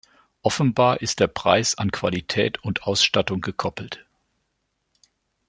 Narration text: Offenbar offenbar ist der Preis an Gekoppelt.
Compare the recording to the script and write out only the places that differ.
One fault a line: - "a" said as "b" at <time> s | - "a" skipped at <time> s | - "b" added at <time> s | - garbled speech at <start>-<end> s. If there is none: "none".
- "offenbar" skipped at 1.0 s
- "Qualität und Ausstattung" added at 1.9 s